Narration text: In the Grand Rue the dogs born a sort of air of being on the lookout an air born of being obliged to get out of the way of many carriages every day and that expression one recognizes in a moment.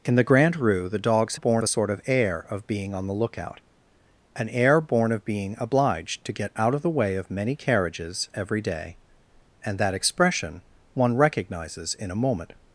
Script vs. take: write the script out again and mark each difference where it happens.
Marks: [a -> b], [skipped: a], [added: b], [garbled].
In the Grand Rue the dogs born a sort of air of being on the lookout an air born of being obliged to get out of the way of many carriages every day and that expression one recognizes in a moment.